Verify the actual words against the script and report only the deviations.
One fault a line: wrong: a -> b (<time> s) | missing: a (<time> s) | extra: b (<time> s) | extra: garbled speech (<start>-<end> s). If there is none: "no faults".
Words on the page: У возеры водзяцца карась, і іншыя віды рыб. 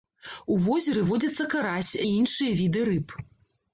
no faults